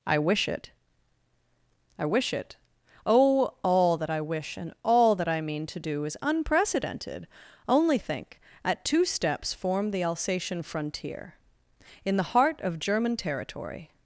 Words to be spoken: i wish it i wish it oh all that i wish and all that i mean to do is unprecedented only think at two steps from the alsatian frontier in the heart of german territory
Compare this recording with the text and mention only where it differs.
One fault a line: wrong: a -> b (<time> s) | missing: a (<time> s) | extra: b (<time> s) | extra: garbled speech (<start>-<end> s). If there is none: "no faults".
wrong: from -> form (9.5 s)